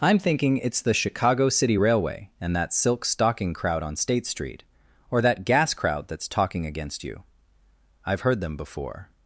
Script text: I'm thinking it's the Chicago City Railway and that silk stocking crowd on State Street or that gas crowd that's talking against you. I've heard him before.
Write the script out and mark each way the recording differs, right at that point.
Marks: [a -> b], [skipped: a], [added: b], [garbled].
I'm thinking it's the Chicago City Railway and that silk stocking crowd on State Street or that gas crowd that's talking against you. I've heard [him -> them] before.